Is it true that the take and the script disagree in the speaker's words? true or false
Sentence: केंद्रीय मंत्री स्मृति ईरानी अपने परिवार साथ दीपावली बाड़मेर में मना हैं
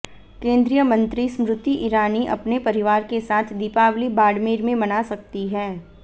true